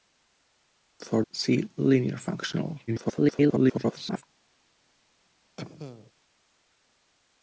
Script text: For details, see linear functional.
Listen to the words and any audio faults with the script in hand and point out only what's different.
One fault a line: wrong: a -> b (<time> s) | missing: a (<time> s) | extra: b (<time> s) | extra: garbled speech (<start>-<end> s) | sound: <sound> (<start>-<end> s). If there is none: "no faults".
missing: details (1.2 s)
extra: garbled speech (2.9-4.2 s)
sound: cough (5.6-6.1 s)